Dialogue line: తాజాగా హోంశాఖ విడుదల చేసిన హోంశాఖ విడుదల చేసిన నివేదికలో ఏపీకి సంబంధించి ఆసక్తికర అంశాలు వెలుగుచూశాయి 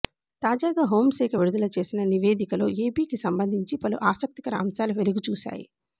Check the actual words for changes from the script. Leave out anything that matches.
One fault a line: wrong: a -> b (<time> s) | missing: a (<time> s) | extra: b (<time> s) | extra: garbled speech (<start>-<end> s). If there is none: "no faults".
missing: హోంశాఖ విడుదల చేసిన (2.0 s)
extra: పలు (3.8 s)